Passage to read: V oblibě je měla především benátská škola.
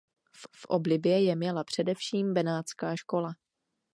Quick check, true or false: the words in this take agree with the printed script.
false